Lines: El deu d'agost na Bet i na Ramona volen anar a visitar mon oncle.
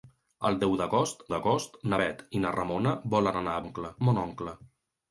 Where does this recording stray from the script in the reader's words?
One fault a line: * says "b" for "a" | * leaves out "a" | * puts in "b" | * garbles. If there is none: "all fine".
* puts in "d'agost"
* says "oncle" for "visitar"